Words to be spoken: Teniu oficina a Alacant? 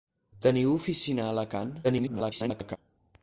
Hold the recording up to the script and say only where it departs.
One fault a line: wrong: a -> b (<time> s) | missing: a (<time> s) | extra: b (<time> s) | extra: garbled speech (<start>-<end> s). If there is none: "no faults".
extra: garbled speech (1.8-2.8 s)